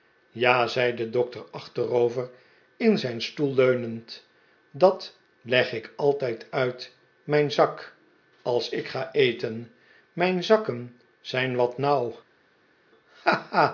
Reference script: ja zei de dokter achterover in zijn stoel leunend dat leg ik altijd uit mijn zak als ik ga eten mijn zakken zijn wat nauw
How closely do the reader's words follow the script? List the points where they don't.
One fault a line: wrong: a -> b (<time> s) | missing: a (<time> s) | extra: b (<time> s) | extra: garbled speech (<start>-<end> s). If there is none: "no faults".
no faults